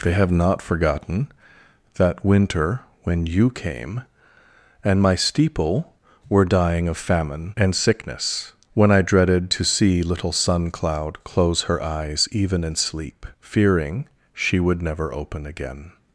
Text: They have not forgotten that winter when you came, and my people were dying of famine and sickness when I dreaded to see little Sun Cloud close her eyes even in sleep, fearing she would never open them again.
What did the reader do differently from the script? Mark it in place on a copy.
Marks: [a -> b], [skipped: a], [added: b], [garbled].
They have not forgotten that winter when you came, and my [people -> steeple] were dying of famine and sickness when I dreaded to see little Sun Cloud close her eyes even in sleep, fearing she would never open [skipped: them] again.